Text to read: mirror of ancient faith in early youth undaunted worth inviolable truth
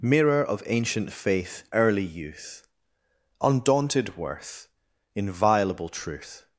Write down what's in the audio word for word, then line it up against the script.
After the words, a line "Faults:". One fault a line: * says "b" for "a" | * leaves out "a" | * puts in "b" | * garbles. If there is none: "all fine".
mirror of ancient faith early youth undaunted worth inviolable truth
Faults:
* leaves out "in"